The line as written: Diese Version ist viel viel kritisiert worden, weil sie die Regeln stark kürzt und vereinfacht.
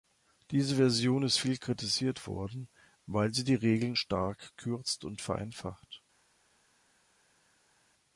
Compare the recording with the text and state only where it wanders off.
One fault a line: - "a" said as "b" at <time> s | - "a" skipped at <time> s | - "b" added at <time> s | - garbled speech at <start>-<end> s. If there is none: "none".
- "viel" skipped at 1.6 s